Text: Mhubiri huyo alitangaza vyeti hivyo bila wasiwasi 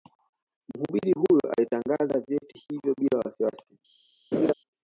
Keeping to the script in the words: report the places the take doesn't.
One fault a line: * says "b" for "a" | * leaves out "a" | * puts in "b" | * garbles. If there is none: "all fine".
all fine